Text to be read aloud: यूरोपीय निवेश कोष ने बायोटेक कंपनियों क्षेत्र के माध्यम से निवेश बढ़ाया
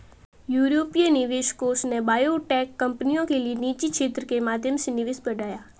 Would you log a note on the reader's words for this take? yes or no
yes